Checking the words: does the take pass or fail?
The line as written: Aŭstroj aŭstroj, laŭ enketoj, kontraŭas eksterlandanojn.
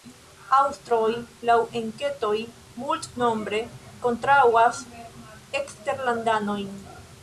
fail